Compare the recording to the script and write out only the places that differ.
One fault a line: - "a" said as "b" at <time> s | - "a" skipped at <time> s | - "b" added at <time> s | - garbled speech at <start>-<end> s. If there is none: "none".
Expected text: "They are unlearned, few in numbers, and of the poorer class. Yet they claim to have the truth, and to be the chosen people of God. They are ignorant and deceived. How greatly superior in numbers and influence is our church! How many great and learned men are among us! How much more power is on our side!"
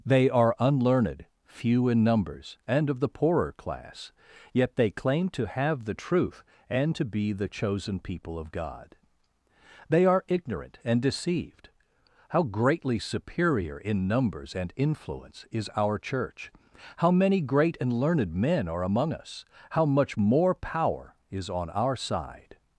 none